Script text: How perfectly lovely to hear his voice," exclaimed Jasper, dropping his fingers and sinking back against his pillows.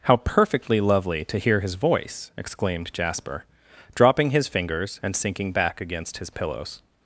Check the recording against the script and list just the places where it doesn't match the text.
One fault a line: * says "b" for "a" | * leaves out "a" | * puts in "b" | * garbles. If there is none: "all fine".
all fine